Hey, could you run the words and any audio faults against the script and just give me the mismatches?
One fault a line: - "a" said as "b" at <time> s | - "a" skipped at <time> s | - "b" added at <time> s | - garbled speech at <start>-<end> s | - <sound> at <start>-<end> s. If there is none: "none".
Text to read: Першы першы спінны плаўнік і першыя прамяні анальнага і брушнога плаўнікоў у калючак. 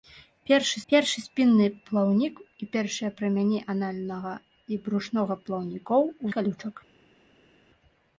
none